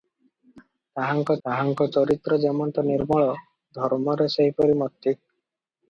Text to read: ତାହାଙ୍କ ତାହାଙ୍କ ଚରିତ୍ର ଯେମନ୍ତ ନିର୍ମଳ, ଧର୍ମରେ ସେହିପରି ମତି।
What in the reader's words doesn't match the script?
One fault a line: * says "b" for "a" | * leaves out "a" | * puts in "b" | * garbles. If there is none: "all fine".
all fine